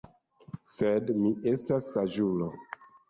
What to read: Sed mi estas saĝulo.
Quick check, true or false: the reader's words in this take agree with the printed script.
true